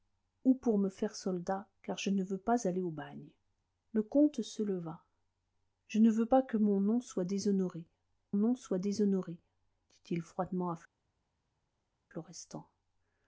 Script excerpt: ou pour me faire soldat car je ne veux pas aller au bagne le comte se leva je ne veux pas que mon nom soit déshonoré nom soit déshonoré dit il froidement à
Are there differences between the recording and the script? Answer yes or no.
no